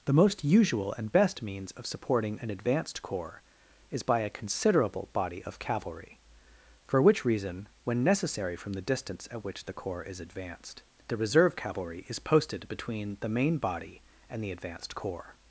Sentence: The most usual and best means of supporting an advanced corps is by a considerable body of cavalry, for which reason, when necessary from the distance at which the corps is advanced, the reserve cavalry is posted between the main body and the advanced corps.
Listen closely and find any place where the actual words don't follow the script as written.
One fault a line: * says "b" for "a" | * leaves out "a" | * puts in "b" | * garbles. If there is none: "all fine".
all fine